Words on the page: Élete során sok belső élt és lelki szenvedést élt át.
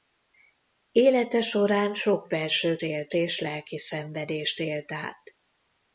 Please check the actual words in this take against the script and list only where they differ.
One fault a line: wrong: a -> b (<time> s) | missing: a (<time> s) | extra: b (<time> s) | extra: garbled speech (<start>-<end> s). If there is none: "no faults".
no faults